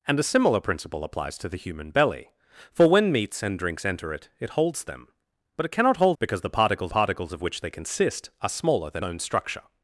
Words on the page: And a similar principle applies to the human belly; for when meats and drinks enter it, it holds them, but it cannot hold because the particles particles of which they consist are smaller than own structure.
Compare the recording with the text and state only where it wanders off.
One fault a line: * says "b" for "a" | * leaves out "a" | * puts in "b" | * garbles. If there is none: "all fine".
all fine